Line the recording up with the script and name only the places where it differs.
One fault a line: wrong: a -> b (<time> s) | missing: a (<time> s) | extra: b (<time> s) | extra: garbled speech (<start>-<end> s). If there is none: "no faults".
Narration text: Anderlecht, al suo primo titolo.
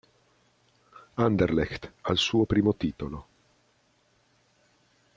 no faults